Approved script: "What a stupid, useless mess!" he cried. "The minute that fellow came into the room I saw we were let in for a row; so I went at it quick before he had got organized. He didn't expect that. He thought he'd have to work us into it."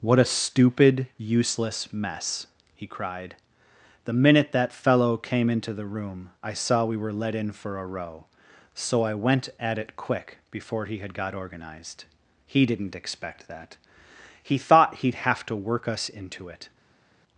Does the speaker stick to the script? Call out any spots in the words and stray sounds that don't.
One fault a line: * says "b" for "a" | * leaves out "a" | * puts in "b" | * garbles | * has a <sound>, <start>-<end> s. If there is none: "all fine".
all fine